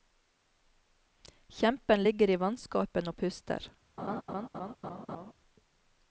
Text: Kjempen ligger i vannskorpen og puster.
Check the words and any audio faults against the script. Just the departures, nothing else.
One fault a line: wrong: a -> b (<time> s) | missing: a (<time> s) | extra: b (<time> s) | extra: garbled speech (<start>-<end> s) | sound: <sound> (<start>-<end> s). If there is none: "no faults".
sound: laugh (4.0-5.3 s)